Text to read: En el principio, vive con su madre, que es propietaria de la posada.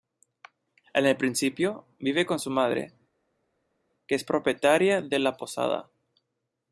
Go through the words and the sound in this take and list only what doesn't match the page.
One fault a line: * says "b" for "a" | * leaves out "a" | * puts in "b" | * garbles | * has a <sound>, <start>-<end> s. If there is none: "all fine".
all fine